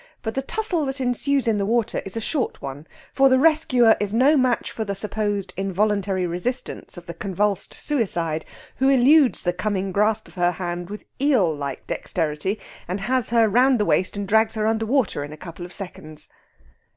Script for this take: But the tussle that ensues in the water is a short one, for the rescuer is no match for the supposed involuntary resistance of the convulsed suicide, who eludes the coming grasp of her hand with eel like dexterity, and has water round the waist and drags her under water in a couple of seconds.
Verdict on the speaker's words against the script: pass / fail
fail